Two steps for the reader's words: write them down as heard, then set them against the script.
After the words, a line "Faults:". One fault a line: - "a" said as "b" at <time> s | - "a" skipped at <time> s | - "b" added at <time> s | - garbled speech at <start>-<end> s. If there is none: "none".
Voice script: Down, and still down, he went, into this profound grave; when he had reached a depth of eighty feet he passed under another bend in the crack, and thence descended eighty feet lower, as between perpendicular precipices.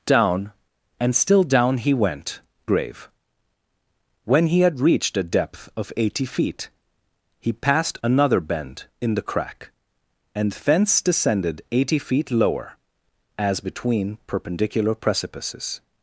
Down, and still down, he went, grave; when he had reached a depth of eighty feet he passed another bend in the crack, and thence descended eighty feet lower, as between perpendicular precipices.
Faults:
- "into this profound" skipped at 2.4 s
- "under" skipped at 8.0 s